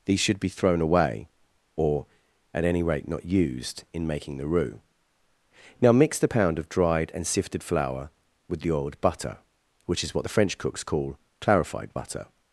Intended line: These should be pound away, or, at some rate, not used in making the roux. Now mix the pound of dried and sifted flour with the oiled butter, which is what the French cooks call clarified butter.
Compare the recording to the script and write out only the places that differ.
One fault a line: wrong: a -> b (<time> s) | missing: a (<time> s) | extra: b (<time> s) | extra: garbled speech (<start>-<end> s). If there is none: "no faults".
wrong: pound -> thrown (0.5 s)
wrong: some -> any (2.6 s)